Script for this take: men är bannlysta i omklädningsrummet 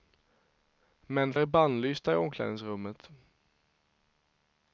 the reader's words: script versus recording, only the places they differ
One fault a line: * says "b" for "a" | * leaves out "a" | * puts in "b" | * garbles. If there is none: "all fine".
all fine